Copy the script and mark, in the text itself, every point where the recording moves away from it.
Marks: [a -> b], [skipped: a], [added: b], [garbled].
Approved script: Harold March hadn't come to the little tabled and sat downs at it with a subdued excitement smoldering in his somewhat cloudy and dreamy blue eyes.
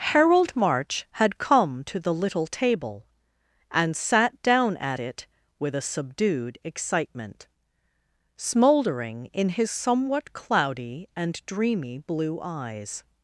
Harold March [hadn't -> had] come to the little [tabled -> table] and sat [downs -> down] at it with a subdued excitement smoldering in his somewhat cloudy and dreamy blue eyes.